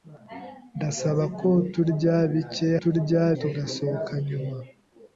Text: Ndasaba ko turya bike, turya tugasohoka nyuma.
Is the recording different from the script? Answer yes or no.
no